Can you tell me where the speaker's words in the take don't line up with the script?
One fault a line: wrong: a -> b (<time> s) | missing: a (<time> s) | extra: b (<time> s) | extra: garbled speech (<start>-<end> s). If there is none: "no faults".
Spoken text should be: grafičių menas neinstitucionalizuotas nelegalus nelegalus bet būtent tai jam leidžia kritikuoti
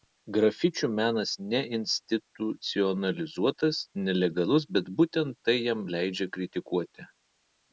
missing: nelegalus (4.7 s)